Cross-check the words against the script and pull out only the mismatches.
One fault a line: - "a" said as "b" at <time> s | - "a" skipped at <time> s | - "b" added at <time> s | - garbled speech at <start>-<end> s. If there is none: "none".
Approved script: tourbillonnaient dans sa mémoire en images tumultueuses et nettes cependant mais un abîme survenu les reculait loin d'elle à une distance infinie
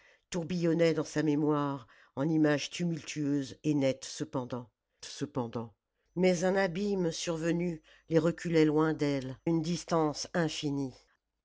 - "cependant" added at 5.1 s
- "à" skipped at 9.4 s